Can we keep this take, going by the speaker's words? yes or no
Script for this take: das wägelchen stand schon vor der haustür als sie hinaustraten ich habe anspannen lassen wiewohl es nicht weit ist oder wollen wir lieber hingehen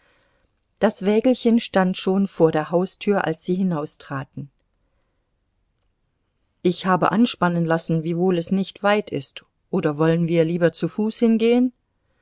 no